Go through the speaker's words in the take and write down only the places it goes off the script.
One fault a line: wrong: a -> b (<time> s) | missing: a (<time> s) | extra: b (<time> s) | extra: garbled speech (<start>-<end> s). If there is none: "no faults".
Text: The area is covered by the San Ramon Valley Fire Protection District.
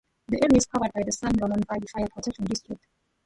no faults